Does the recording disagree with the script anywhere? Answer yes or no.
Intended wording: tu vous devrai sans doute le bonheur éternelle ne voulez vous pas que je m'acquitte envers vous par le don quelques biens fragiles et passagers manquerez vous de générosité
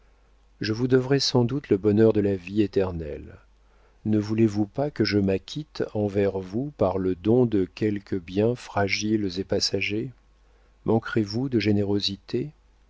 yes